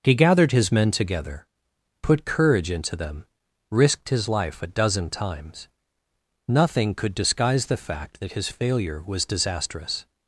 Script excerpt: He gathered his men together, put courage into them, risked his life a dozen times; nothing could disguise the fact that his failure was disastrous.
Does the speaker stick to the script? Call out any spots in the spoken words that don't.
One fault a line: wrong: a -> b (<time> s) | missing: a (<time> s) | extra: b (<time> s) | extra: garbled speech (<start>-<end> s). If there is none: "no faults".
no faults